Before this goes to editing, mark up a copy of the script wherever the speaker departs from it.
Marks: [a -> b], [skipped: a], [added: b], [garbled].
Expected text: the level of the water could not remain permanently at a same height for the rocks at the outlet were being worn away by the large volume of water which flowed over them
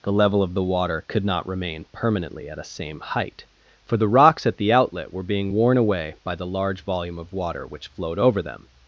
the level of the water could not remain permanently at a same height for the rocks at the outlet were being worn away by the large volume of water which flowed over them